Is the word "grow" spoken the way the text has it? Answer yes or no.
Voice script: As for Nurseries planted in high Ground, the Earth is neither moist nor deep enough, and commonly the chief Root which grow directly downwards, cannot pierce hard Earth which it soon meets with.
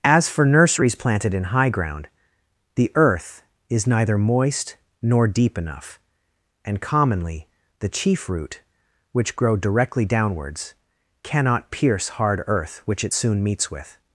yes